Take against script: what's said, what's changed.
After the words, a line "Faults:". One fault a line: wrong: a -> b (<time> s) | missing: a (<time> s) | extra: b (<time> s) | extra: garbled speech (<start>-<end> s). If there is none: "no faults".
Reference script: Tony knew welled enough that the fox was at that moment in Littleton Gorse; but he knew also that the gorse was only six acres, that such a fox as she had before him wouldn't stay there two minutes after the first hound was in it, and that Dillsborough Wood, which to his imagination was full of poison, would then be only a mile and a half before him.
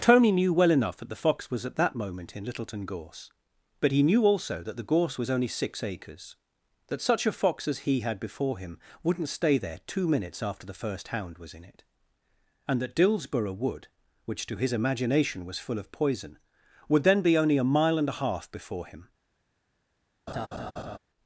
Tony knew well enough that the fox was at that moment in Littleton Gorse; but he knew also that the gorse was only six acres, that such a fox as he had before him wouldn't stay there two minutes after the first hound was in it, and that Dillsborough Wood, which to his imagination was full of poison, would then be only a mile and a half before him.
Faults:
wrong: welled -> well (0.5 s)
wrong: she -> he (7.9 s)